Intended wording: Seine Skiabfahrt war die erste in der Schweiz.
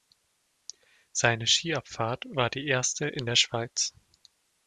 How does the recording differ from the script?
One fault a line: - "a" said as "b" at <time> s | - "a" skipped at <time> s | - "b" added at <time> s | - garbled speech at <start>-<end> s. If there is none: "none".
none